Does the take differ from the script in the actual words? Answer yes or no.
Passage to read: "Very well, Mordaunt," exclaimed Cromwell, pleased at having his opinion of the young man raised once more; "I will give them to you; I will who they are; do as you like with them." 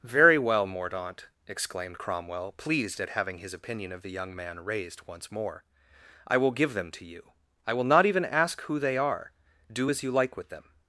yes